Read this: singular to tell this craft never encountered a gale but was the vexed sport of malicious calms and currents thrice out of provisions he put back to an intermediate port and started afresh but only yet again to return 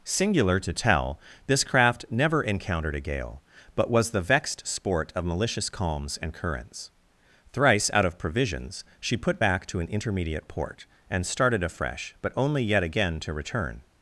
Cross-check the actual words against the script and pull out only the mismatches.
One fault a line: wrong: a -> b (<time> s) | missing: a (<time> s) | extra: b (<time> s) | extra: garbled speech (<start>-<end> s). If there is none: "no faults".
wrong: he -> she (9.0 s)